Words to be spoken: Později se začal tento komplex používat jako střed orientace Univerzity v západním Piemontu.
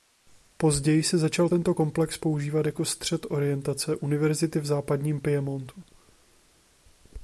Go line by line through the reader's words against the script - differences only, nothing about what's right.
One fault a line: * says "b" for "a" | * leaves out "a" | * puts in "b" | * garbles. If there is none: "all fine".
all fine